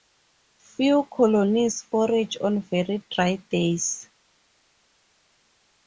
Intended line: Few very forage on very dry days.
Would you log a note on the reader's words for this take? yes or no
yes